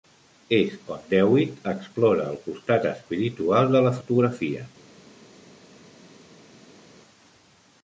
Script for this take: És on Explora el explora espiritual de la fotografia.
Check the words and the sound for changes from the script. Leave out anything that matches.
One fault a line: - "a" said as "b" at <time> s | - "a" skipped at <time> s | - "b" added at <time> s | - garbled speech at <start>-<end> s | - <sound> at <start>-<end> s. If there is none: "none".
- "Dewitt" added at 1.1 s
- "explora" said as "costat" at 2.5 s